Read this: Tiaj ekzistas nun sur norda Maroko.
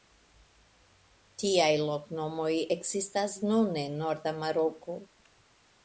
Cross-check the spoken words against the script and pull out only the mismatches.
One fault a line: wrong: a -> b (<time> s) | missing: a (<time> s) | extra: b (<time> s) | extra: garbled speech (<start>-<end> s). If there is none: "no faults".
extra: loknomoj (1.8 s)
wrong: sur -> en (3.8 s)